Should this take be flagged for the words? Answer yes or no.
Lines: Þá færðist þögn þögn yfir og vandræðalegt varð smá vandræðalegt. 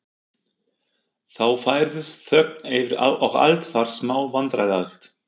yes